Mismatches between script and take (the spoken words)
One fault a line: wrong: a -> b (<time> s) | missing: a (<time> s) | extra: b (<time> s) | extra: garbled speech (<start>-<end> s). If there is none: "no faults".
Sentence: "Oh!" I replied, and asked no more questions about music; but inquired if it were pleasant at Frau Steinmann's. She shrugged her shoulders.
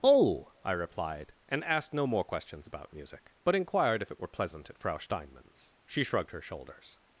no faults